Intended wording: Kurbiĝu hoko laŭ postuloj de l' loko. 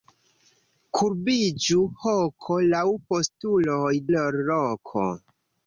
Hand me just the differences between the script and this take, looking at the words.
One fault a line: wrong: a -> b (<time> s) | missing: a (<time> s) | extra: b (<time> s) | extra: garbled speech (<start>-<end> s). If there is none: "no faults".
missing: de (3.9 s)